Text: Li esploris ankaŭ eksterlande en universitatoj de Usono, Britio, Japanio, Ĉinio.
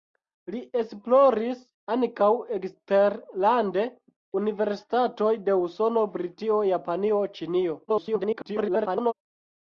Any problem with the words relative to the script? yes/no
yes